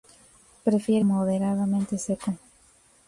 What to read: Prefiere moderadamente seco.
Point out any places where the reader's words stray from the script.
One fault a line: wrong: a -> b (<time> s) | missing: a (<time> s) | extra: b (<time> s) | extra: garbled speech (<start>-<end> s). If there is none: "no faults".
no faults